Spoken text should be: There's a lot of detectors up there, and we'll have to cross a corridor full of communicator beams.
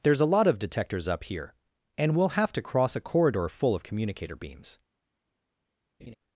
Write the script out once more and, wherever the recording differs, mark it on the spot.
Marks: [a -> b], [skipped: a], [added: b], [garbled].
There's a lot of detectors up [there, -> here] and we'll have to cross a corridor full of communicator beams.